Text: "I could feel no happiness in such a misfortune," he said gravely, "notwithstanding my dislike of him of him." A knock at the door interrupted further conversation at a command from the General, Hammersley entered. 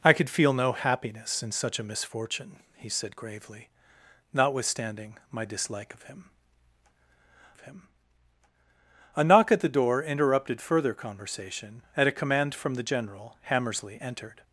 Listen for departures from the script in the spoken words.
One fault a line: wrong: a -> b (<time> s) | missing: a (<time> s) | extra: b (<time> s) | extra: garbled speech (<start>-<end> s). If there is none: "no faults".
no faults